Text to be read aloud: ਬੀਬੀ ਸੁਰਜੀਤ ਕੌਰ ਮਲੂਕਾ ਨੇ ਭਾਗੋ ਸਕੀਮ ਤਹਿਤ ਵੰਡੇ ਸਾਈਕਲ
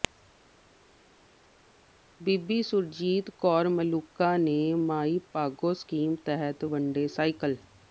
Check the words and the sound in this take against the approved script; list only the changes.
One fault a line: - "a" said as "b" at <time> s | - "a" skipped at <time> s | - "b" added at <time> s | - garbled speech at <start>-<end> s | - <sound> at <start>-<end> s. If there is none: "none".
- "ਮਾਈ" added at 4.8 s